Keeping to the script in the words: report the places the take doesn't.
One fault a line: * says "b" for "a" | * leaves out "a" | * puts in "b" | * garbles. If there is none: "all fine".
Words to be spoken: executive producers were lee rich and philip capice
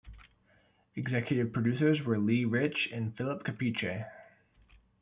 all fine